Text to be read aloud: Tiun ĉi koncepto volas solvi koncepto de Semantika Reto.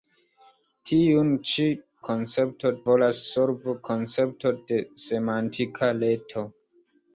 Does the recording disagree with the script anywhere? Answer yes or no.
no